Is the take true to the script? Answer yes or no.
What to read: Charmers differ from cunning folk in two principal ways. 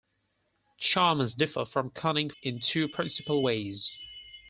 no